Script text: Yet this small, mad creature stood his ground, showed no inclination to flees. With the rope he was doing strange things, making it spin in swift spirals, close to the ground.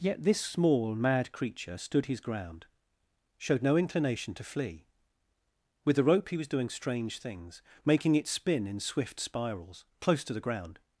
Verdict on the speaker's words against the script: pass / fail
fail